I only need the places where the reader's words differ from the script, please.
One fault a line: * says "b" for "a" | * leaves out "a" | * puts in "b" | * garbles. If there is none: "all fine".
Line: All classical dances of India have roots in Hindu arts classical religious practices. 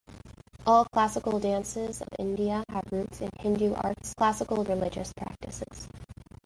all fine